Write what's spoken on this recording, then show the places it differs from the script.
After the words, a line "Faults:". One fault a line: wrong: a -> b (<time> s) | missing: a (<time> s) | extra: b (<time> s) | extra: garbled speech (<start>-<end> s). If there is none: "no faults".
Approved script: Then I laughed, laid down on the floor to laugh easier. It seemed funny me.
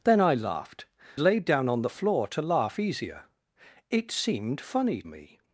Then I laughed, laid down on the floor to laugh easier. It seemed funny me.
Faults:
no faults